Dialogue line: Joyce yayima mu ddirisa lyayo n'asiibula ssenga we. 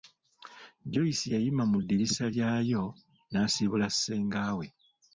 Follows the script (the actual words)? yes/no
yes